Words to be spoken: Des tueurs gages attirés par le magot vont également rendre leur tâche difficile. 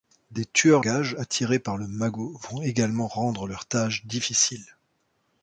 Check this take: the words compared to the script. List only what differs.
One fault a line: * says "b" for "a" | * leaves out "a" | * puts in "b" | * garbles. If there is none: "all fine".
all fine